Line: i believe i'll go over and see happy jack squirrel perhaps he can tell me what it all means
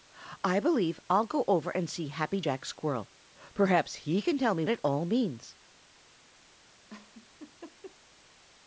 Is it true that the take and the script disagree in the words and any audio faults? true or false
true